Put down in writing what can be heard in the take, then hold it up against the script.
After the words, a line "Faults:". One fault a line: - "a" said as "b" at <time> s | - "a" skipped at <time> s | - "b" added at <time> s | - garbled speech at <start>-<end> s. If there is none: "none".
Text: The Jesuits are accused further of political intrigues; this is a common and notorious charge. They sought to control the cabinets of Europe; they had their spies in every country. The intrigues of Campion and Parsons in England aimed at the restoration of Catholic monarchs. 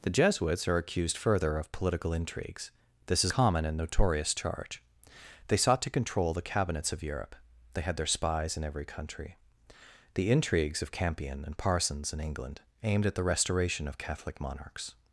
The Jesuits are accused further of political intrigues; this is common and notorious charge. They sought to control the cabinets of Europe; they had their spies in every country. The intrigues of Campion and Parsons in England aimed at the restoration of Catholic monarchs.
Faults:
- "a" skipped at 3.3 s